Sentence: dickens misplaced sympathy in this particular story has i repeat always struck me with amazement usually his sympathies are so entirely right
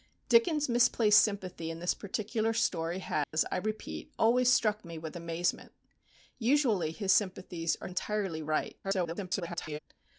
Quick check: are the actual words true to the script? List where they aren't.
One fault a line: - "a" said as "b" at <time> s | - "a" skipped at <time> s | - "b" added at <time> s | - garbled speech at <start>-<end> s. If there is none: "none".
- "so" skipped at 7.9 s
- garbled speech at 8.8-9.8 s